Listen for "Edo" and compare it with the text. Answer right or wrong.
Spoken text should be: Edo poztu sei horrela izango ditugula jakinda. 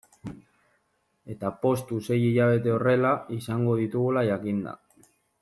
wrong